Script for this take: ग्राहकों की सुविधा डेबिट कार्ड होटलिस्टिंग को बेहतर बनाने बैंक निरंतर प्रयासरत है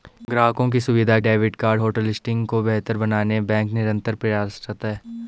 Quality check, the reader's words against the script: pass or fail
pass